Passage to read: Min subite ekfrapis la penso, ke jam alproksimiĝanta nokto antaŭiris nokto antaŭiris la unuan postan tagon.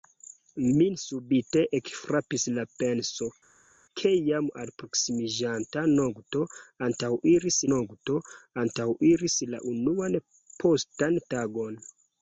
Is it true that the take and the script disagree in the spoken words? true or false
false